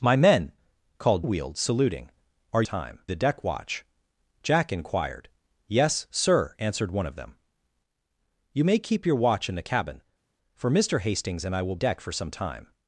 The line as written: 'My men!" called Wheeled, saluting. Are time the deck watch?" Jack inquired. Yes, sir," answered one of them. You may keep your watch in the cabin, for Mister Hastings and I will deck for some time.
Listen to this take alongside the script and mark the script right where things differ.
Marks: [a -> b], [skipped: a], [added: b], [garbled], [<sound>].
'My men!" called Wheeled, saluting. Are time the deck watch?" Jack inquired. Yes, sir," answered one of them. You may keep your watch in the cabin, for Mister Hastings and I will deck for some time.